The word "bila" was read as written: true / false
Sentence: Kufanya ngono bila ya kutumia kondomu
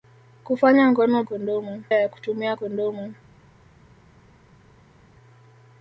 false